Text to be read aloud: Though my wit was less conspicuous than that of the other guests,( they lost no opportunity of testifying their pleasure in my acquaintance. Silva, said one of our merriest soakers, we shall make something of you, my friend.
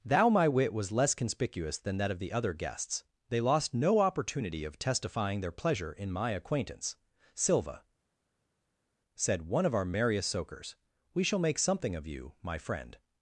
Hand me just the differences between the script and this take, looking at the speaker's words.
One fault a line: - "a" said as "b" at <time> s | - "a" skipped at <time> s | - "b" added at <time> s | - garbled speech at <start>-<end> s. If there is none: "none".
- "Though" said as "Thou" at 0.0 s